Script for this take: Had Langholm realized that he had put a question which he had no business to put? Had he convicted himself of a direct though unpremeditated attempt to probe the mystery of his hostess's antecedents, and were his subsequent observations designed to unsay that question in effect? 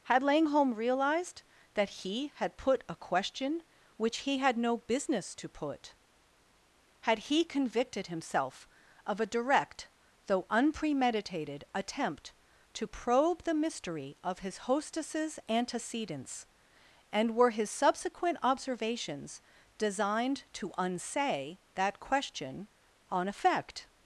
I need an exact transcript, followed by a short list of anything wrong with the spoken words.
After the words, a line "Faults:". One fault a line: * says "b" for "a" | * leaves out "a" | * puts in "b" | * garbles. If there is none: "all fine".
Had Langholm realized that he had put a question which he had no business to put? Had he convicted himself of a direct though unpremeditated attempt to probe the mystery of his hostess's antecedents, and were his subsequent observations designed to unsay that question on effect?
Faults:
* says "on" for "in"